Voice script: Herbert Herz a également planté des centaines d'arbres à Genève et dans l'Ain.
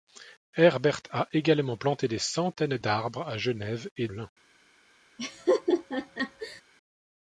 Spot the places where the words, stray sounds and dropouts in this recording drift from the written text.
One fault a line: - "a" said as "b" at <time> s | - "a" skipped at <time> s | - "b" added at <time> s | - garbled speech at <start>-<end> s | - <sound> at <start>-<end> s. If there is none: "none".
- "Herz" skipped at 1.0 s
- "dans" skipped at 4.1 s
- laugh at 5.2-6.6 s